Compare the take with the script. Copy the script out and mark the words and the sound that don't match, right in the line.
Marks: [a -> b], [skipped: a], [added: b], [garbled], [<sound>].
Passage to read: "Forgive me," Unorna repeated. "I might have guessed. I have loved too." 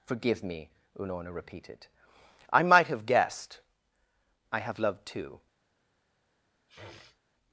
"Forgive me," Unorna repeated. "I might have guessed. I have loved too." [sniff]